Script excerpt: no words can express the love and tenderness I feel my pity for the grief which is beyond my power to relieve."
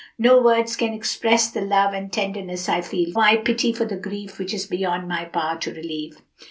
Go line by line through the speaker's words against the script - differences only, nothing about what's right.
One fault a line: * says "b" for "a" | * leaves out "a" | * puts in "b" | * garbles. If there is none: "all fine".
all fine